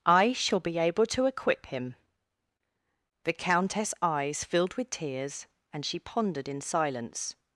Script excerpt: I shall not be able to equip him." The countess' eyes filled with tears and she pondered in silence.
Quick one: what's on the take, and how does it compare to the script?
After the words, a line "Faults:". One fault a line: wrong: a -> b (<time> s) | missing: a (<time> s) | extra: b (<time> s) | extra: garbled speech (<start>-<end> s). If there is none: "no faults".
I shall be able to equip him." The countess' eyes filled with tears and she pondered in silence.
Faults:
missing: not (0.6 s)